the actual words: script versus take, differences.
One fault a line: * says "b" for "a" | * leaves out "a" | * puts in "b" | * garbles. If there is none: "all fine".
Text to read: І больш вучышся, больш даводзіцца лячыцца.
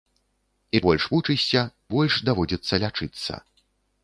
all fine